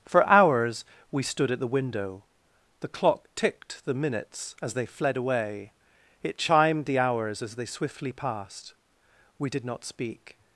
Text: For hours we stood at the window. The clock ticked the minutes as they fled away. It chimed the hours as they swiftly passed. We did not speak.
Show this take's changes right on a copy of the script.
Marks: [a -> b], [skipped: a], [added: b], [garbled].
For hours we stood at the window. The clock ticked the minutes as they fled away. It chimed the hours as they swiftly passed. We did not speak.